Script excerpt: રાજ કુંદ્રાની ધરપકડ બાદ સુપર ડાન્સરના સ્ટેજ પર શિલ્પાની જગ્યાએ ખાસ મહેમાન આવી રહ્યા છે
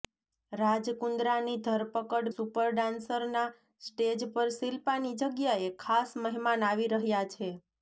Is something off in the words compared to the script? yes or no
yes